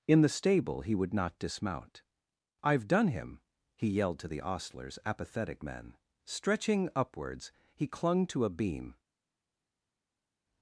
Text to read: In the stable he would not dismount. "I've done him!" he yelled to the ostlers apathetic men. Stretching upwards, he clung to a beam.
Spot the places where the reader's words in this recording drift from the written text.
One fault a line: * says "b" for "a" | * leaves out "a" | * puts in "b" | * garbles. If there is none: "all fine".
all fine